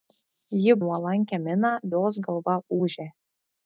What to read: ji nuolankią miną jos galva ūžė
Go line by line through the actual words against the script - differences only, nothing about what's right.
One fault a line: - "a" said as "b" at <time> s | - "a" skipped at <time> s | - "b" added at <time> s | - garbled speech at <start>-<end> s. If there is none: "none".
none